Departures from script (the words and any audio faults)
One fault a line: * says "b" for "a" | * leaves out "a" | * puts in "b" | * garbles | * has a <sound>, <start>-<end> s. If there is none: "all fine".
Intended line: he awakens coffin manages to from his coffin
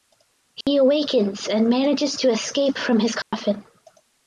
* has a dropout, 0.6-0.7 s
* says "and" for "coffin"
* puts in "escape"
* has a dropout, 3.2-3.3 s